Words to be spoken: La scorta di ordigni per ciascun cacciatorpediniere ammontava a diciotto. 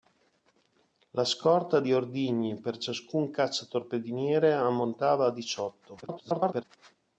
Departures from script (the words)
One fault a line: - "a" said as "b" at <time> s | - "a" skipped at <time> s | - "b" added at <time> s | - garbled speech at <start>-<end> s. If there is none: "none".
- garbled speech at 6.0-6.6 s